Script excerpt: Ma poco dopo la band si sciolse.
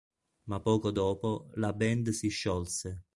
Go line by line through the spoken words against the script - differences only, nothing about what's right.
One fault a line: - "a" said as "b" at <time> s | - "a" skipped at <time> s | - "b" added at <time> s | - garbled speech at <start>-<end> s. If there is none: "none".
none